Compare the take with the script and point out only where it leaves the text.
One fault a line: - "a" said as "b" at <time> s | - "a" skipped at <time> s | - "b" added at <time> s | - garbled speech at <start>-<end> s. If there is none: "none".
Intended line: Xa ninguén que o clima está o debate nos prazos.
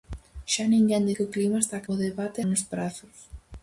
none